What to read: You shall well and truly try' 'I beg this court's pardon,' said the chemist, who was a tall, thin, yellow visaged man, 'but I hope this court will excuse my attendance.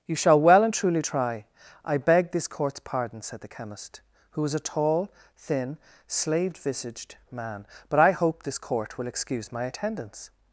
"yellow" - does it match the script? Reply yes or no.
no